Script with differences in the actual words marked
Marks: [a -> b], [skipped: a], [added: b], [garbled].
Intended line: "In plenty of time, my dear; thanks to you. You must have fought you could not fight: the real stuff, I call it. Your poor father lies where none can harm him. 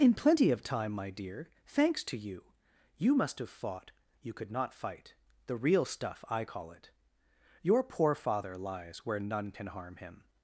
"In plenty of time, my dear; thanks to you. You must have fought you could not fight: the real stuff, I call it. Your poor father lies where none can harm him.